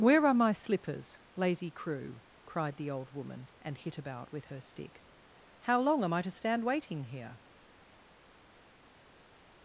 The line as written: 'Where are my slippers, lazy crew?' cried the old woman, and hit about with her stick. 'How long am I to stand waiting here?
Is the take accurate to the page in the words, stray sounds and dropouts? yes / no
yes